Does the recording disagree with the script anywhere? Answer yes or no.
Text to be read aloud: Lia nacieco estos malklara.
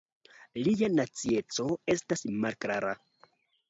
yes